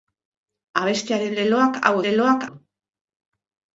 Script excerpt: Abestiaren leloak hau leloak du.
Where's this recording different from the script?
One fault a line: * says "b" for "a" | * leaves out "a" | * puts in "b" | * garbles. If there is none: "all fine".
all fine